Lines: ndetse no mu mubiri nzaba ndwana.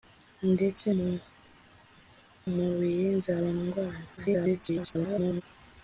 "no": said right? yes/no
no